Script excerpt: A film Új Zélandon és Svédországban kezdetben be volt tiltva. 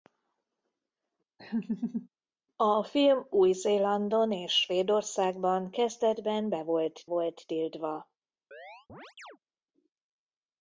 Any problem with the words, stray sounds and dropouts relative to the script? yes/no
yes